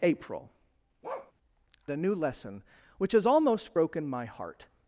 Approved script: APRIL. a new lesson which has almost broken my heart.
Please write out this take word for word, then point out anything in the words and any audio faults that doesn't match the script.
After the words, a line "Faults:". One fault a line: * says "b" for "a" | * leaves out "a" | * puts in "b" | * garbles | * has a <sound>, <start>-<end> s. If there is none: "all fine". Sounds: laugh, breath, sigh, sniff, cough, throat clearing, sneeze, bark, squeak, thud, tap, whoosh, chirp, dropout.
APRIL. a new lesson which has almost broken my heart.
Faults:
* has a bark, 1.0-1.3 s